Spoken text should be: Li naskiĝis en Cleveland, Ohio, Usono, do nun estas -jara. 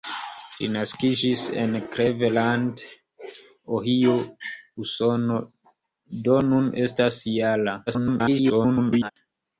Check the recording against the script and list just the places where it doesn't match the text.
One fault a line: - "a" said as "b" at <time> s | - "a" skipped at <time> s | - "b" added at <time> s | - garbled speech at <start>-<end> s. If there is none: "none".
- garbled speech at 7.9-9.1 s